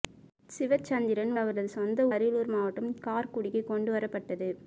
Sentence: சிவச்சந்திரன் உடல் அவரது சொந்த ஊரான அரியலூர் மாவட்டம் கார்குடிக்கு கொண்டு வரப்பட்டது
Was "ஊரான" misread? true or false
true